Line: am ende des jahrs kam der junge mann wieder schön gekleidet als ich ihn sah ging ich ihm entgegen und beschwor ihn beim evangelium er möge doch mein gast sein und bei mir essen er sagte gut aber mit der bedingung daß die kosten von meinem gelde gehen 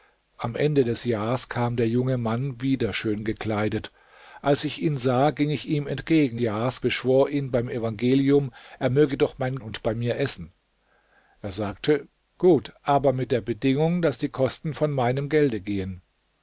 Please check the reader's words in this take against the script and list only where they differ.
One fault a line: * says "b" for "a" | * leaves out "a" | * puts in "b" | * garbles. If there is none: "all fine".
* says "jahrs" for "und"
* leaves out "gast sein"